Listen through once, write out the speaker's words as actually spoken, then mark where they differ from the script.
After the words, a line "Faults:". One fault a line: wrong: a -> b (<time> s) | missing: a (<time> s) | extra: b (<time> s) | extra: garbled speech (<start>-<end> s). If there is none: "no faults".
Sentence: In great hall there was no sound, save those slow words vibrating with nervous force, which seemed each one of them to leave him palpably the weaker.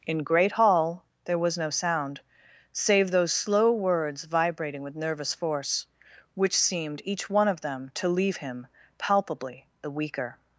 In great hall there was no sound, save those slow words vibrating with nervous force, which seemed each one of them to leave him palpably the weaker.
Faults:
no faults